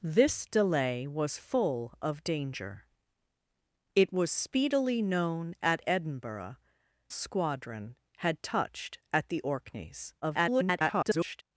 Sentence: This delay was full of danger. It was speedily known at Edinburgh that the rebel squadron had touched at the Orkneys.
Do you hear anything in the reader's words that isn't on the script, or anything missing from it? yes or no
yes